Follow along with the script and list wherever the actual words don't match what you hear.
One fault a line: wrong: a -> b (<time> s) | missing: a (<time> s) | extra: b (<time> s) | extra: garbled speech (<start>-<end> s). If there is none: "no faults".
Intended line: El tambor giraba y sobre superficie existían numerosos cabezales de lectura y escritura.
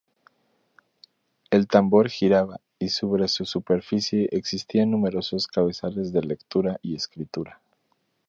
extra: su (3.3 s)